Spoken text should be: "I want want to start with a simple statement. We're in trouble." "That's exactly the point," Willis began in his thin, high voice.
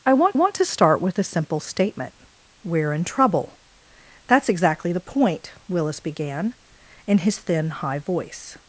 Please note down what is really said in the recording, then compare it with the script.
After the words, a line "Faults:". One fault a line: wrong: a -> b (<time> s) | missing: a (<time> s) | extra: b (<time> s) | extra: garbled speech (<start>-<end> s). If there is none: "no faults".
"I want want to start with a simple statement. We're in trouble." "That's exactly the point," Willis began in his thin, high voice.
Faults:
no faults